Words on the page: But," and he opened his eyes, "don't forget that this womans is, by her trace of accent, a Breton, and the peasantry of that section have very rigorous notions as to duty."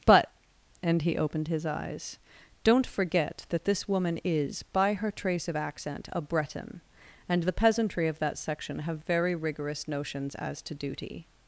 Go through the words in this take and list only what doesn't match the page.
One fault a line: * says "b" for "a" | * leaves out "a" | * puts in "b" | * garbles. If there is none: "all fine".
* says "woman" for "womans"